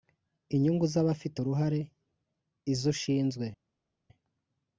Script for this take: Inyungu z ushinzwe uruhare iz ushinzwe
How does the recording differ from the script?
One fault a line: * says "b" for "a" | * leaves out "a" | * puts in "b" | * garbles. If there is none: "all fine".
* says "abafite" for "ushinzwe"